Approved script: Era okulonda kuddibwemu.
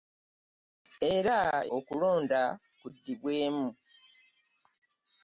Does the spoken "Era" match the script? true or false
true